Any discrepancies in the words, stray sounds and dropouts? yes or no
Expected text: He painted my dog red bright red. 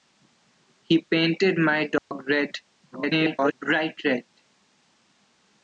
yes